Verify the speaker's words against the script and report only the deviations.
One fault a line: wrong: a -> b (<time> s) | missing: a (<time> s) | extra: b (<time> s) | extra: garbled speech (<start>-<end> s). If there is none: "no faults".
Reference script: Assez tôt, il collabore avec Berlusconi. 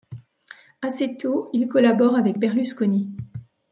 no faults